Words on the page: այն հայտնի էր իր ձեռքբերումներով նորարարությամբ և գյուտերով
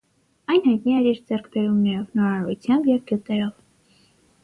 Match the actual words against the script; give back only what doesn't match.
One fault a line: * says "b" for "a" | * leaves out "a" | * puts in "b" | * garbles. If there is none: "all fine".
all fine